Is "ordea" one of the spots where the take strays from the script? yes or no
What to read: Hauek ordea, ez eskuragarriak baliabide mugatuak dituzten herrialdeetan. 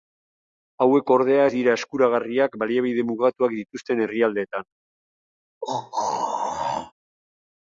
no